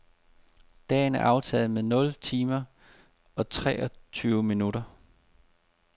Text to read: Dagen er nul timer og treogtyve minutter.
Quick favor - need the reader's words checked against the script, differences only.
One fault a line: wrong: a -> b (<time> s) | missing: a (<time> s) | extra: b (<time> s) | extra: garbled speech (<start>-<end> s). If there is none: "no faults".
extra: aftaget med (1.2 s)